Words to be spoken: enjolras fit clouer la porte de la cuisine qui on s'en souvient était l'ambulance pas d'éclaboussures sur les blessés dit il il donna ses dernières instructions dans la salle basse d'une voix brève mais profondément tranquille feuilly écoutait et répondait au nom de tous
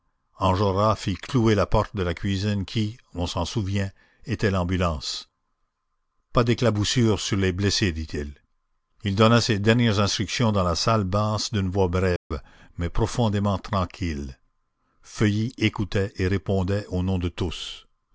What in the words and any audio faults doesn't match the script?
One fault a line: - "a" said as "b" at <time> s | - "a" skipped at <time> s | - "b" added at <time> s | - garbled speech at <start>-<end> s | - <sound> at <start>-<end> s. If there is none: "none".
- dropout at 12.2-12.3 s